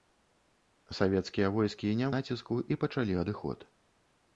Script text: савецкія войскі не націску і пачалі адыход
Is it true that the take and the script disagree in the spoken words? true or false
false